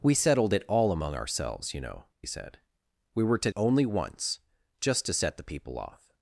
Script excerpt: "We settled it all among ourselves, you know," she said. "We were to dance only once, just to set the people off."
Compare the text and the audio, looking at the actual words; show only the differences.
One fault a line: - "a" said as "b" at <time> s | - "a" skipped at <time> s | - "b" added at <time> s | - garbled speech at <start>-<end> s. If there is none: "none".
- "she" skipped at 2.0 s
- "dance" skipped at 3.5 s